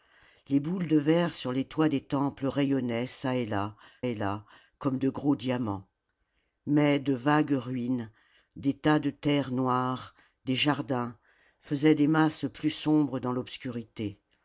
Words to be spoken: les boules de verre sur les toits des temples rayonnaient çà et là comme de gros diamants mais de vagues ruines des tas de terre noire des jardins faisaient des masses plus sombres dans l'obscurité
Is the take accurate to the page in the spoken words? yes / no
no